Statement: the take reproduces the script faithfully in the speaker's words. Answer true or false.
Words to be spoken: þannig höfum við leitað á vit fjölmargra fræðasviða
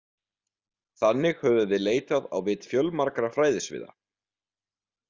true